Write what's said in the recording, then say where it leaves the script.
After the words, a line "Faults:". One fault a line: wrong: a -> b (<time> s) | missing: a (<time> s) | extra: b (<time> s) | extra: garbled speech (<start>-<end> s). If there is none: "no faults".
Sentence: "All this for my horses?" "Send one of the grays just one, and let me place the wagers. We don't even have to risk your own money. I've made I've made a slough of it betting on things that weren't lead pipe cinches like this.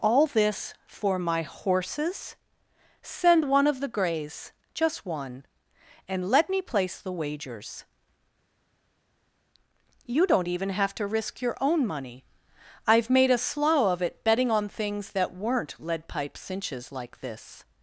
"All this for my horses?" "Send one of the grays just one, and let me place the wagers. You don't even have to risk your own money. I've made a slough of it betting on things that weren't lead pipe cinches like this.
Faults:
wrong: We -> You (10.1 s)
missing: I've made (13.3 s)